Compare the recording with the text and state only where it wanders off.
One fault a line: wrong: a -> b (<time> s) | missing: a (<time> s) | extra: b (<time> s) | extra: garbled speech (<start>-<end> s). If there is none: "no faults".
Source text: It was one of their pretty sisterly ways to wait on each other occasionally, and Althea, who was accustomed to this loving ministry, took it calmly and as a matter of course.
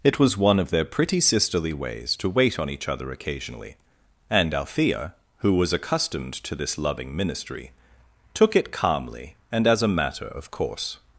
no faults